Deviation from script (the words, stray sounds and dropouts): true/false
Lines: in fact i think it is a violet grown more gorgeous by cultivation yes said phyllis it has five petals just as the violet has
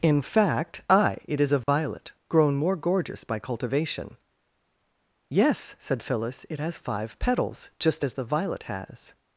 true